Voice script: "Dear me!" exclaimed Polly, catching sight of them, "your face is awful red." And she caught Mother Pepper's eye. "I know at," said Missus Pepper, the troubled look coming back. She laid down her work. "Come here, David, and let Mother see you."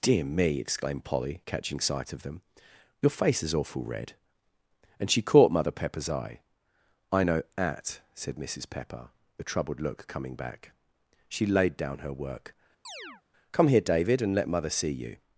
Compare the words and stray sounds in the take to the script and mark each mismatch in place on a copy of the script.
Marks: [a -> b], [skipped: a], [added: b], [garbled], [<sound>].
"Dear me!" exclaimed Polly, catching sight of them, "your face is awful red." And she caught Mother Pepper's eye. "I know at," said Missus Pepper, the troubled look coming back. She laid down her work. [chirp] "Come here, David, and let Mother see you."